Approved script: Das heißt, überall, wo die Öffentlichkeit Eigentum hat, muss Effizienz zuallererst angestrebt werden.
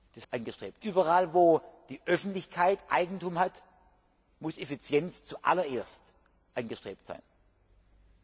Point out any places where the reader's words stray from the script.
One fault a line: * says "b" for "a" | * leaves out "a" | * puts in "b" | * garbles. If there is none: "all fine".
* says "angestrebt" for "heißt"